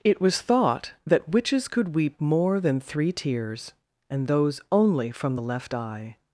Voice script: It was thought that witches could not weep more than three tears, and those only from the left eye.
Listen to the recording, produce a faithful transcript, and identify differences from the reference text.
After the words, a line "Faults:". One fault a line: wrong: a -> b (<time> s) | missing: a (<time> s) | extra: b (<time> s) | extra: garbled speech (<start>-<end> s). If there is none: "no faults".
It was thought that witches could weep more than three tears, and those only from the left eye.
Faults:
missing: not (1.9 s)